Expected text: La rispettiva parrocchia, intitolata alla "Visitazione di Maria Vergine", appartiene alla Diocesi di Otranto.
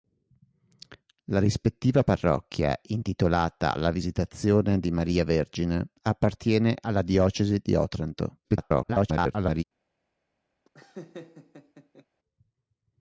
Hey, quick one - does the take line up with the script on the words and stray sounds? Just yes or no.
no